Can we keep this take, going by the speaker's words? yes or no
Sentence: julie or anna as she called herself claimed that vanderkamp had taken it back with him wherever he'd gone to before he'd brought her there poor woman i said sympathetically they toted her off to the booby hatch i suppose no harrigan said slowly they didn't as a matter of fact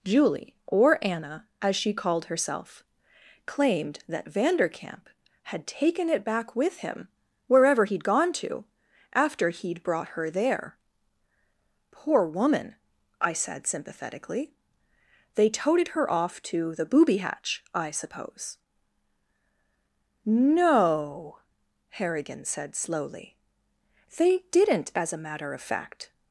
no